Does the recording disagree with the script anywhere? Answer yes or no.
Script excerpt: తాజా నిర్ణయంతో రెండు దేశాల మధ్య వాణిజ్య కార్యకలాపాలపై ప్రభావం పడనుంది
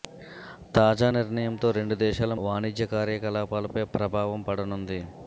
yes